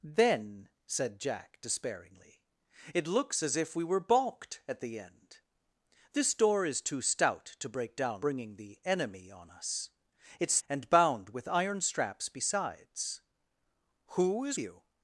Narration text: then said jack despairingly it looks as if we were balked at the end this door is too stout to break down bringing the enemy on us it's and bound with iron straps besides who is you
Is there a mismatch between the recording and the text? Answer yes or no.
no